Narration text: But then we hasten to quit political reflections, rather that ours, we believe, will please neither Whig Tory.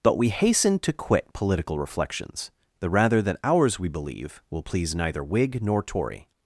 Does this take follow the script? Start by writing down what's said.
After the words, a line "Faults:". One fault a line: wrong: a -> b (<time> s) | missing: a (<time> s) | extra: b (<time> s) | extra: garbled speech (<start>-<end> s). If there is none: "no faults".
But we hasten to quit political reflections, the rather that ours, we believe, will please neither Whig nor Tory.
Faults:
missing: then (0.2 s)
extra: the (2.8 s)
extra: nor (5.6 s)